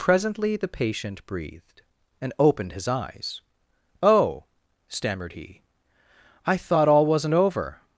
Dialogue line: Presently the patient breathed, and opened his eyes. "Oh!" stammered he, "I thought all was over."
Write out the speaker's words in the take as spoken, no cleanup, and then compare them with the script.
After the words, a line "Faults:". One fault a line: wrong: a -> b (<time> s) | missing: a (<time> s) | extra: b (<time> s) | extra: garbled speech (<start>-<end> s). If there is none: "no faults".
Presently the patient breathed, and opened his eyes. "Oh!" stammered he, "I thought all wasn't over."
Faults:
wrong: was -> wasn't (7.0 s)